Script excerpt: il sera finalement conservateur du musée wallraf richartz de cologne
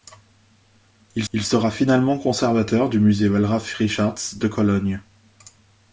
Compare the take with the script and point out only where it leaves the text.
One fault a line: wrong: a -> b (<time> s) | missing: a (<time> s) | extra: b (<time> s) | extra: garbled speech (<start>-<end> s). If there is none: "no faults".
extra: il (1.3 s)